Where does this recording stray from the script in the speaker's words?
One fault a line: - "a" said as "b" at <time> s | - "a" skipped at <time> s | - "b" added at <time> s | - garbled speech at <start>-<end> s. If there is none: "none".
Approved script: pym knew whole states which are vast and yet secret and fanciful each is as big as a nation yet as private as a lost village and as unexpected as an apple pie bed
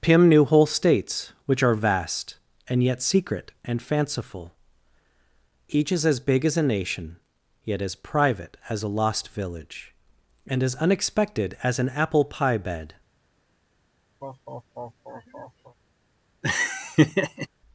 none